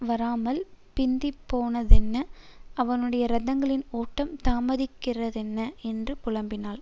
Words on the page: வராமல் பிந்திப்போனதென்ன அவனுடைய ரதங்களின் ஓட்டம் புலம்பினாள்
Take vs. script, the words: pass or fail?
fail